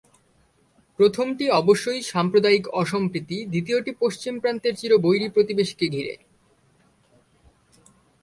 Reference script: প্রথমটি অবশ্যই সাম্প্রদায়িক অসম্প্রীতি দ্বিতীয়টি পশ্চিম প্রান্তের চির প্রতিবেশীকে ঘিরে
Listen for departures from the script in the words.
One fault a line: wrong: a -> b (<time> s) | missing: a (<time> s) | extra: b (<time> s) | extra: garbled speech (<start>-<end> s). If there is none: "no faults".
extra: বৈরী (5.0 s)